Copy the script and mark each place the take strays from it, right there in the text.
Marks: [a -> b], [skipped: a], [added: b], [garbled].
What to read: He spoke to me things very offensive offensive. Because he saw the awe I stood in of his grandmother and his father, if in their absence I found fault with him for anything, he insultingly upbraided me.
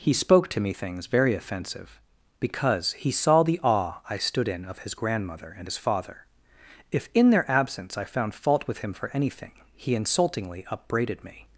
He spoke to me things very offensive [skipped: offensive.] Because he saw the awe I stood in of his grandmother and his father, if in their absence I found fault with him for anything, he insultingly upbraided me.